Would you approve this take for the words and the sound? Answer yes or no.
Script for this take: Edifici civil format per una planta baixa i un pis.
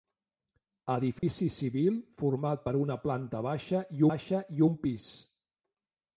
no